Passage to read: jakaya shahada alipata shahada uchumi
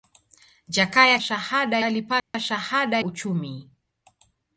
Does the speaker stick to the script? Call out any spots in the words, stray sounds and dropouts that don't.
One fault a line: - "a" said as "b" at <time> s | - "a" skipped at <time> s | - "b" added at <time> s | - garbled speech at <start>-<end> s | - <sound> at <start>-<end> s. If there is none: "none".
- dropout at 2.2-2.3 s